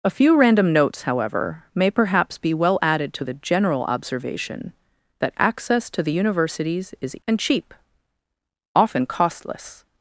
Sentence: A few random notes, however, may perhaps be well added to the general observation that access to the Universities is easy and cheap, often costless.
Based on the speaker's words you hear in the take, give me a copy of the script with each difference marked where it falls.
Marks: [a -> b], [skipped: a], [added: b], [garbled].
A few random notes, however, may perhaps be well added to the general observation that access to the Universities is [skipped: easy] and cheap, often costless.